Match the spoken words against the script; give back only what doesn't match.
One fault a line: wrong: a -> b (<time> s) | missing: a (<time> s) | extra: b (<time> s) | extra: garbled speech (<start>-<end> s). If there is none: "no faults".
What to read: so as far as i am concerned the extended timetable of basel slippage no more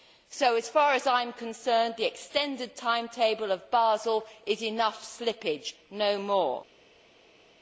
extra: is enough (4.5 s)